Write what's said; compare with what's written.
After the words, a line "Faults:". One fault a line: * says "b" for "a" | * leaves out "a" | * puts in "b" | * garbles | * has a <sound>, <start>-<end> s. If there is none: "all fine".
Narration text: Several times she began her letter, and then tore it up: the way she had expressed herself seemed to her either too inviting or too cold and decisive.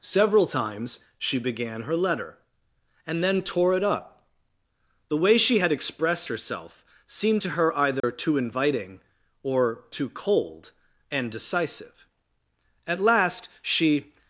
Several times she began her letter, and then tore it up: the way she had expressed herself seemed to her either too inviting or too cold and decisive. At last she
Faults:
* has a dropout, 8.0-8.0 s
* puts in "At last she"